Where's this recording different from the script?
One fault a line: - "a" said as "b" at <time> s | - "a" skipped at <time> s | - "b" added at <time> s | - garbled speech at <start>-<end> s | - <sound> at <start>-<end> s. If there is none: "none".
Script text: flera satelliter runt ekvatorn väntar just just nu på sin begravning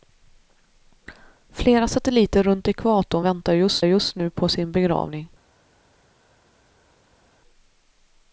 none